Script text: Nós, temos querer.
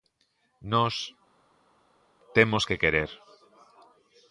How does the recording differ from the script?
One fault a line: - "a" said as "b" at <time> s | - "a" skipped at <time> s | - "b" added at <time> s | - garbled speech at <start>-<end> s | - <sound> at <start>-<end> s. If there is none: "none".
- "que" added at 2.6 s